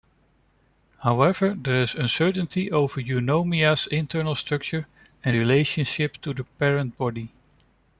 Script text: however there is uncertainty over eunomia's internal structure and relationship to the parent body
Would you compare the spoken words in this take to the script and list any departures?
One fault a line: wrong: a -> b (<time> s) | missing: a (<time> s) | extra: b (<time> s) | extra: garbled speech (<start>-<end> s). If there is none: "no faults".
no faults